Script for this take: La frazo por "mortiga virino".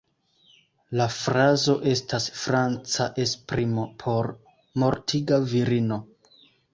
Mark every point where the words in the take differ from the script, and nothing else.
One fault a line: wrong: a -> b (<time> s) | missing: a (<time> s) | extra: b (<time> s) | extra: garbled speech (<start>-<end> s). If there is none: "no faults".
extra: estas franca esprimo (1.9 s)